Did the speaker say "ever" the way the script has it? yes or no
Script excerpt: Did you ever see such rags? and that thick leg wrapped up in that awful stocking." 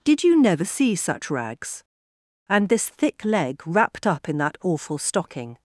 no